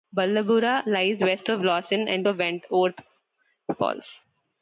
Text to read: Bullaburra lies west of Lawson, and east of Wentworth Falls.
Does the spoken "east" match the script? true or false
false